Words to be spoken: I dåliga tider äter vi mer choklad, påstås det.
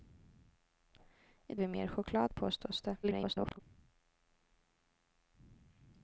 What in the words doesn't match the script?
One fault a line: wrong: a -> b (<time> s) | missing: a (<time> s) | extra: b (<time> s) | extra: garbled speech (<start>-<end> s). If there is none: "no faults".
missing: dåliga tider äter (1.6 s)
extra: garbled speech (3.0-3.6 s)